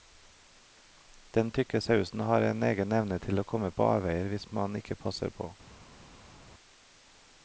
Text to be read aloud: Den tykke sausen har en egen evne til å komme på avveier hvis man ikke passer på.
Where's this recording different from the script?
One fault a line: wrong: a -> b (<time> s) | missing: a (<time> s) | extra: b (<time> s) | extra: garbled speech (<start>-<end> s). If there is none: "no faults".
no faults